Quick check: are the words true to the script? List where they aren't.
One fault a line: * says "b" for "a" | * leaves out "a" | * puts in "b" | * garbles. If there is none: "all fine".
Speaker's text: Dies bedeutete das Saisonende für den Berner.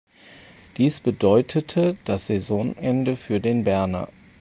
all fine